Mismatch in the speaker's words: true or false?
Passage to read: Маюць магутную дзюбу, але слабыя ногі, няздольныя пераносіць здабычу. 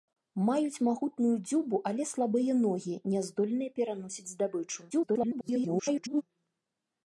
true